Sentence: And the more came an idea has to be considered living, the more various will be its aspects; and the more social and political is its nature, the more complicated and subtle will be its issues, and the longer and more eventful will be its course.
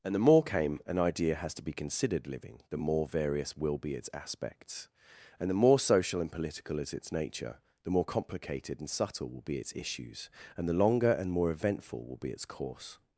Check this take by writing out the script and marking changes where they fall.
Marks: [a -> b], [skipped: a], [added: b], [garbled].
And the more came an idea has to be considered living, the more various will be its aspects; and the more social and political is its nature, the more complicated and subtle will be its issues, and the longer and more eventful will be its course.